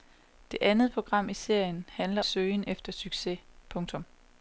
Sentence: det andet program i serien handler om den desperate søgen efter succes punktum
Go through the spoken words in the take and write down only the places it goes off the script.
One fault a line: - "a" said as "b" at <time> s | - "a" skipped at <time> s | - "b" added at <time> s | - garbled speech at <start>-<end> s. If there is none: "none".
- "om den desperate" skipped at 2.2 s